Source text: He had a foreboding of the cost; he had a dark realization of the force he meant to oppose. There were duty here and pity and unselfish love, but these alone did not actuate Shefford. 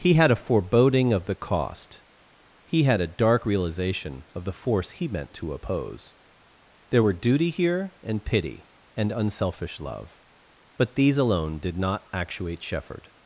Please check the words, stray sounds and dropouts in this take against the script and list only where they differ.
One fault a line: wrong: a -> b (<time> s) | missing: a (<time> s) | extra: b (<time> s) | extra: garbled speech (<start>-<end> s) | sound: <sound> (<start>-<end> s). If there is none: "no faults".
no faults